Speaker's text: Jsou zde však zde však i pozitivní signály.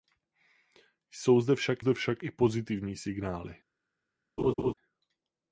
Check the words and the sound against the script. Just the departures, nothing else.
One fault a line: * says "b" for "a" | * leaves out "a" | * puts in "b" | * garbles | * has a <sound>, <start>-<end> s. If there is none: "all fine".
* has a laugh, 4.4-4.7 s